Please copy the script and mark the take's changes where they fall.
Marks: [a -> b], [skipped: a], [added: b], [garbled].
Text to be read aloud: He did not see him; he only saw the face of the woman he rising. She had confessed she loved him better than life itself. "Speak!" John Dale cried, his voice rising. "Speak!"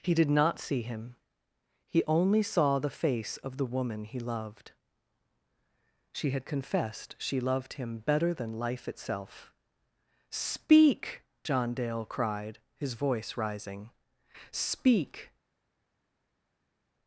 He did not see him; he only saw the face of the woman he [rising. -> loved] She had confessed she loved him better than life itself. "Speak!" John Dale cried, his voice rising. "Speak!"